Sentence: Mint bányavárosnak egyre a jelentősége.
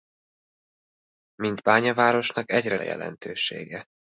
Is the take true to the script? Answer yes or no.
yes